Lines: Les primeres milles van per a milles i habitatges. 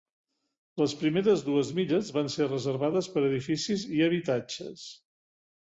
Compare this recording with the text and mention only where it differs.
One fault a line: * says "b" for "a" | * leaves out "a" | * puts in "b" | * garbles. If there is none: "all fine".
* puts in "dues"
* puts in "ser reservades"
* says "edificis" for "milles"